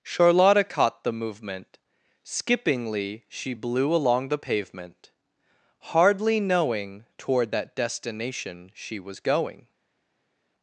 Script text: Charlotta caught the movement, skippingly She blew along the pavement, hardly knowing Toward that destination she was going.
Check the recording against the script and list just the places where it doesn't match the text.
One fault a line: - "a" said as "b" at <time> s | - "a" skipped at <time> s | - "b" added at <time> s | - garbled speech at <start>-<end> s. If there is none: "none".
none